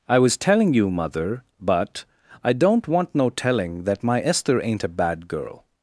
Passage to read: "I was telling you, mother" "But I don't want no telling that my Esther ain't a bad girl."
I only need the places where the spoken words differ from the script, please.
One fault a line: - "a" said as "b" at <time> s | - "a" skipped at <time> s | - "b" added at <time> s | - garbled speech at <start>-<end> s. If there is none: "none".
none